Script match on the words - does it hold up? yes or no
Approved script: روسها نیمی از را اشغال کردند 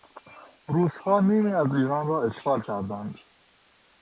no